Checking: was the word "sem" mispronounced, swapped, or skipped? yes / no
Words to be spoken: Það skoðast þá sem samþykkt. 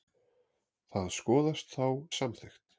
yes